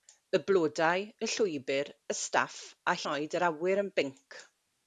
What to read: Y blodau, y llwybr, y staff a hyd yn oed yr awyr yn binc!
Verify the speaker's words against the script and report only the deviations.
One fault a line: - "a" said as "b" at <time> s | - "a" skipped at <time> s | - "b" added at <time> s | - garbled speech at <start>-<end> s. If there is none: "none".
- "hyd" skipped at 3.0 s